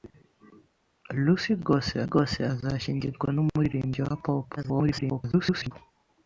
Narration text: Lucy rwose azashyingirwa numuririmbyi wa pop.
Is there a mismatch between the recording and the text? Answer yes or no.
yes